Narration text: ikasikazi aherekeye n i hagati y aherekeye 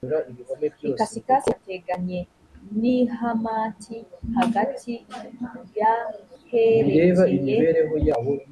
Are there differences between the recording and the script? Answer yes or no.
yes